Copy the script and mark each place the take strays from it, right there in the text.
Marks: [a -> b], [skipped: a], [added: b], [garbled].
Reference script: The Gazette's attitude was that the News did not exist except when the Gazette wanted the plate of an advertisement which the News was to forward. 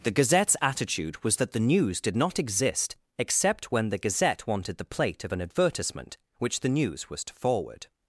The Gazette's attitude was that the News did not exist except when the Gazette wanted the plate of an advertisement which the News was to forward.